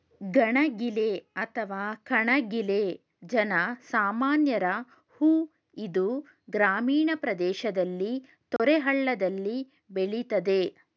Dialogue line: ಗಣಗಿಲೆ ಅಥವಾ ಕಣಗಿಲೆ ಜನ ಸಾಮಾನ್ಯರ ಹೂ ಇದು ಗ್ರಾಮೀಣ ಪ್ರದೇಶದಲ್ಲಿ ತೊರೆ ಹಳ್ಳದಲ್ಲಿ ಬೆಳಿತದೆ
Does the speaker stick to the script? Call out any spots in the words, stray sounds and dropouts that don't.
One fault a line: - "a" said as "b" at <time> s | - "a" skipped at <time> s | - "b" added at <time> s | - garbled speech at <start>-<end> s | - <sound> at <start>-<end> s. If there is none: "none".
- dropout at 8.6-8.6 s